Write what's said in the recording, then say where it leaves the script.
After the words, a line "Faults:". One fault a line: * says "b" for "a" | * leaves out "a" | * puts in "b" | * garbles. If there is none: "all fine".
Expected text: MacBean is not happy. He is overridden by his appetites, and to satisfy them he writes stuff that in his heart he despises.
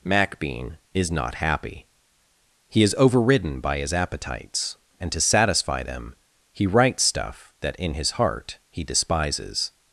MacBean is not happy. He is overridden by his appetites, and to satisfy them he writes stuff that in his heart he despises.
Faults:
all fine